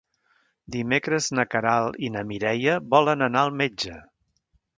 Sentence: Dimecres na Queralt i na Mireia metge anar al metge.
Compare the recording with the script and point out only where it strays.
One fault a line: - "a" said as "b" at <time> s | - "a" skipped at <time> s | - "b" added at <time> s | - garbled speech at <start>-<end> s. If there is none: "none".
- "metge" said as "volen" at 3.0 s